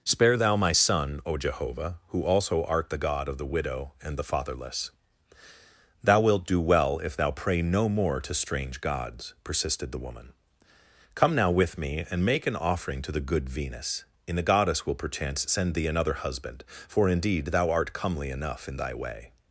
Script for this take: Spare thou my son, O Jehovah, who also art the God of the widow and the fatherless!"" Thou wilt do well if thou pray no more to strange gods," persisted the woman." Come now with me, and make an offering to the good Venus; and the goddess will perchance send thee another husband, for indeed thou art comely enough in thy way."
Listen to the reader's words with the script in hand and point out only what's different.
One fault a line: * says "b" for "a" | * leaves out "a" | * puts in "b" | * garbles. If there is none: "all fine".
all fine